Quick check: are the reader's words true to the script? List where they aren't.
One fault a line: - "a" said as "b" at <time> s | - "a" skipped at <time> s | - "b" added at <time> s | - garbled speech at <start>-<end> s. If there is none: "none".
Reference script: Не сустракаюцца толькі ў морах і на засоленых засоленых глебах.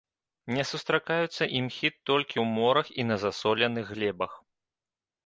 - "імхі" added at 1.6 s
- "засоленых" skipped at 3.9 s